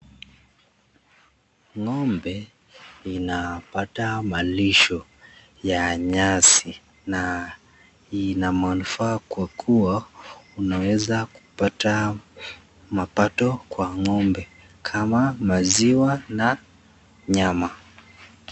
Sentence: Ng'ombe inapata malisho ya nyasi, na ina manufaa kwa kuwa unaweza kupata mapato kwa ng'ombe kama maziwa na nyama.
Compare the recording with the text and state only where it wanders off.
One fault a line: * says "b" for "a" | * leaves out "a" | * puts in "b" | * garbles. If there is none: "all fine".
all fine